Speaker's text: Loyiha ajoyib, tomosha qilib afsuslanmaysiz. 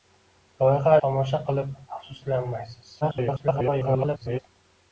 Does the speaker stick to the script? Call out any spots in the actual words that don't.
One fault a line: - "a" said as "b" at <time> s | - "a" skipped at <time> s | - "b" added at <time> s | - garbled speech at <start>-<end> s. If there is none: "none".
- "ajoyib" skipped at 0.9 s
- garbled speech at 3.0-4.4 s